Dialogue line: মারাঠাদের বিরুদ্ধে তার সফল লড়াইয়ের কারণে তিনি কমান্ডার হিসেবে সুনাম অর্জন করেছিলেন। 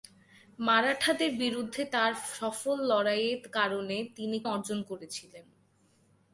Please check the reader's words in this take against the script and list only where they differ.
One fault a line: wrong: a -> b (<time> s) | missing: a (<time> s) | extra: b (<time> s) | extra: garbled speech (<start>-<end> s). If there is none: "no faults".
missing: কমান্ডার হিসেবে সুনাম (4.4 s)